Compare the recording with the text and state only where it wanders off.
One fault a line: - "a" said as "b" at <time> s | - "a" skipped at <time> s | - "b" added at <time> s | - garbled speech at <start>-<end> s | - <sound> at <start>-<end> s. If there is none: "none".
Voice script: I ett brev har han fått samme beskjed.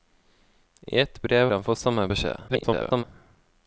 - "har" skipped at 1.5 s
- garbled speech at 2.5-3.0 s